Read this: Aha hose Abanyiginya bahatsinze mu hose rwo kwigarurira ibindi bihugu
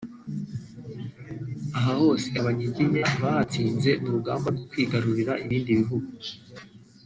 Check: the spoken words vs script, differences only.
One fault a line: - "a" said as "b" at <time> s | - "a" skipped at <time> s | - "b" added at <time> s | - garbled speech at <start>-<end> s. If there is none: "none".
- "hose" said as "rugamba" at 4.1 s